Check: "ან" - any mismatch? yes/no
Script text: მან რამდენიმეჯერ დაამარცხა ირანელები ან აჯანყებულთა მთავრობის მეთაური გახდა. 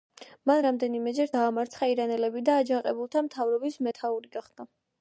yes